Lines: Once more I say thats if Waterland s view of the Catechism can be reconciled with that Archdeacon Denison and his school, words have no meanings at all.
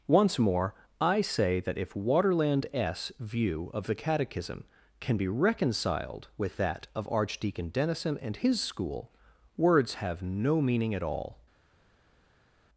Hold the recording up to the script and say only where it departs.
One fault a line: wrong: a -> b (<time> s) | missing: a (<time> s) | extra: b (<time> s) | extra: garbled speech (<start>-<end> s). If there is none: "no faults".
wrong: thats -> that (1.6 s)
extra: of (6.9 s)
wrong: meanings -> meaning (10.6 s)